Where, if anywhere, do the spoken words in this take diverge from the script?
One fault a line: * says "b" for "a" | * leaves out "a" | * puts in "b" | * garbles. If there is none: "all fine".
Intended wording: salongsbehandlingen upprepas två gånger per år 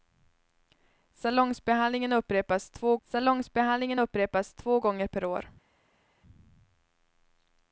* puts in "salongsbehandlingen upprepas två"